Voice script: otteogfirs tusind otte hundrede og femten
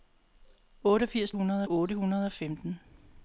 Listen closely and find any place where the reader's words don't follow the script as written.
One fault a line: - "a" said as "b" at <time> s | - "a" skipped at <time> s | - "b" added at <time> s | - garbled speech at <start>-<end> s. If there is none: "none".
- "tusind" said as "hundrede" at 1.3 s